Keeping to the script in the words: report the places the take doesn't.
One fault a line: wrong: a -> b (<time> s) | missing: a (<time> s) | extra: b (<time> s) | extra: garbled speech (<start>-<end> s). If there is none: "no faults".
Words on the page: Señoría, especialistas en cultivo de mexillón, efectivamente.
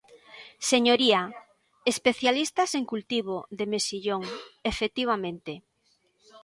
no faults